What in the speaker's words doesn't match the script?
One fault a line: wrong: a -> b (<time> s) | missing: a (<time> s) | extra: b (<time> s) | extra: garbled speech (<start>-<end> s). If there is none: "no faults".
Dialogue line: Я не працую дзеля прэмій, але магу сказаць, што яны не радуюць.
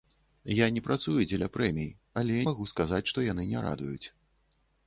no faults